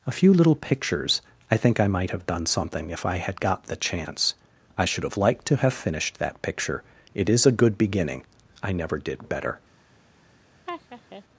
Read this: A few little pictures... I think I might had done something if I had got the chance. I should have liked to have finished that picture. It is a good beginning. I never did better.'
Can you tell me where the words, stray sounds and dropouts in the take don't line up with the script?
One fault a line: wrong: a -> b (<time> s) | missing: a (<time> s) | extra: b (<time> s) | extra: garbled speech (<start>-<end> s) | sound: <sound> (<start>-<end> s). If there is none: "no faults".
wrong: had -> have (2.1 s)
sound: laugh (10.7-11.2 s)